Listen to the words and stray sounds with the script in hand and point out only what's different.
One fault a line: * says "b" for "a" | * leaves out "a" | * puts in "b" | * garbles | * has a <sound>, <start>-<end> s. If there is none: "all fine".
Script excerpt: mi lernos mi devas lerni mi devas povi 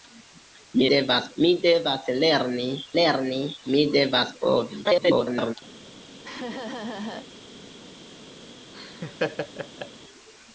* says "devas" for "lernos"
* puts in "lerni"
* garbles
* has a laugh, 6.2-7.3 s
* has a laugh, 8.7-9.9 s